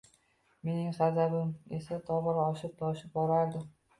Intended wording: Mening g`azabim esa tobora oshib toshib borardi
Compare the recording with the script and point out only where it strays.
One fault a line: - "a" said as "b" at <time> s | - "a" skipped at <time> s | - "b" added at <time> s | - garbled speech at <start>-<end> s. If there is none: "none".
none